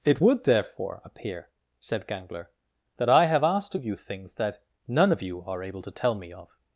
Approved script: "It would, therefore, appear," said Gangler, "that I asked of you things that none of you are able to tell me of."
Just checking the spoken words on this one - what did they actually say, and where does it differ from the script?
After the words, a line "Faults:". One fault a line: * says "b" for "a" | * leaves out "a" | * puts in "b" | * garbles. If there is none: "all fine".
"It would, therefore, appear," said Gangler, "that I have asked of you things that none of you are able to tell me of."
Faults:
* puts in "have"